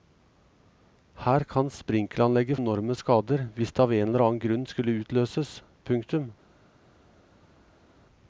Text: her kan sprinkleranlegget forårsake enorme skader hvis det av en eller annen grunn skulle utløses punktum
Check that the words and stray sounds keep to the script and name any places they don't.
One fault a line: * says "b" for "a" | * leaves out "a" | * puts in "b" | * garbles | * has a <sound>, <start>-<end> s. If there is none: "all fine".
* leaves out "forårsake"